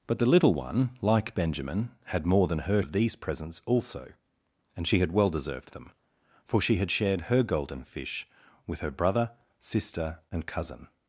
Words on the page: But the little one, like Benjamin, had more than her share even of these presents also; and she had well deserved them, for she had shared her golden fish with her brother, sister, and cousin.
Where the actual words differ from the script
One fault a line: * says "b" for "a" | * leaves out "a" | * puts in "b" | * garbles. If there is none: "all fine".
* leaves out "share even"